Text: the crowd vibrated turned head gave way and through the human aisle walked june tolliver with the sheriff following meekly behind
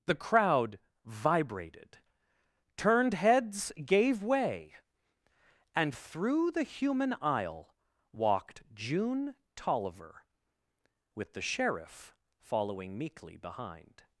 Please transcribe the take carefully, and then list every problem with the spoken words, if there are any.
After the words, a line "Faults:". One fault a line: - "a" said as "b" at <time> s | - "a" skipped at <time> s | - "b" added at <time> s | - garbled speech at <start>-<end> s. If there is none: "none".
the crowd vibrated turned heads gave way and through the human aisle walked june tolliver with the sheriff following meekly behind
Faults:
- "head" said as "heads" at 3.1 s